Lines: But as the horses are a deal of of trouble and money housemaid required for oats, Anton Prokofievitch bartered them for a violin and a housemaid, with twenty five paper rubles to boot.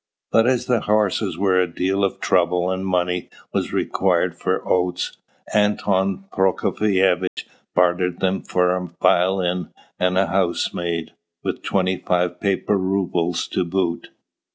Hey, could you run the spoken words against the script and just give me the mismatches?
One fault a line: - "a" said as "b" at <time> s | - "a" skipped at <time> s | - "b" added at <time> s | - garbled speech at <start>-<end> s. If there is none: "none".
- "are" said as "were" at 1.4 s
- "of" skipped at 2.2 s
- "housemaid" said as "was" at 3.5 s